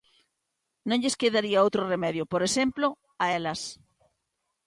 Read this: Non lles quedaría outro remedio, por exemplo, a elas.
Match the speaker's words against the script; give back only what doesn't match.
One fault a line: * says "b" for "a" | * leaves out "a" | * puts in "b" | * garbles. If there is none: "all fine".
all fine